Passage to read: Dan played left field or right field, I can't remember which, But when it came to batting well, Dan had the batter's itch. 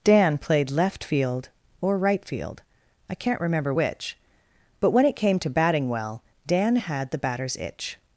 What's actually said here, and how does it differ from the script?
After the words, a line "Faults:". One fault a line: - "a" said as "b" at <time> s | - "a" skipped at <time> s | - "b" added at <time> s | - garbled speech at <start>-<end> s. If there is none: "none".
Dan played left field or right field, I can't remember which, But when it came to batting well, Dan had the batter's itch.
Faults:
none